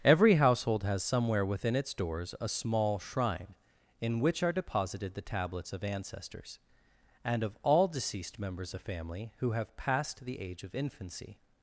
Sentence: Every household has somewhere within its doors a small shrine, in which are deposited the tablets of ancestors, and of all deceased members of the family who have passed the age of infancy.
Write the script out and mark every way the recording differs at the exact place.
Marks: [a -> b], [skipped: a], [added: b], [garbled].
Every household has somewhere within its doors a small shrine, in which are deposited the tablets of ancestors, and of all deceased members [skipped: of] the family who have passed the age of infancy.